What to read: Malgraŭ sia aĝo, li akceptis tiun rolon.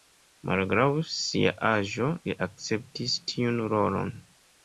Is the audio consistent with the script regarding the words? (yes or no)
yes